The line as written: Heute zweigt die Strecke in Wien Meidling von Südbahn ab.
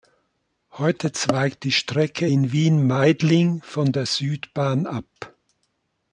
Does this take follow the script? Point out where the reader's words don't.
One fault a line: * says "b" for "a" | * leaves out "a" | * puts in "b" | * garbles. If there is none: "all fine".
* puts in "der"